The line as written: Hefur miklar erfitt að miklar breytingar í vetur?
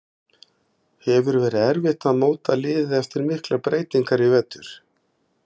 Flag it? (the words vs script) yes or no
yes